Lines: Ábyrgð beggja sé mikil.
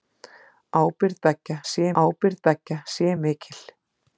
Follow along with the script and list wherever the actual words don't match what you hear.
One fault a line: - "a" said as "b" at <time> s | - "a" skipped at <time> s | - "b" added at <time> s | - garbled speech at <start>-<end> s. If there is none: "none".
- "ábyrgð beggja sé" added at 2.0 s